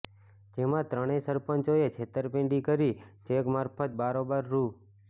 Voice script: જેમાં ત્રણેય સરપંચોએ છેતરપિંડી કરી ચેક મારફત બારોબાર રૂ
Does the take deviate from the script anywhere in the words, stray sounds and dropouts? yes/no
no